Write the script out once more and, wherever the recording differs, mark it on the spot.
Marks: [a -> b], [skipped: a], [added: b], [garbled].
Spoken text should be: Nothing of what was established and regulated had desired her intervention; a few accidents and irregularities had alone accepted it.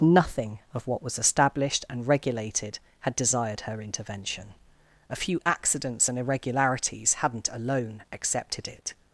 Nothing of what was established and regulated had desired her intervention; a few accidents and irregularities [had -> hadn't] alone accepted it.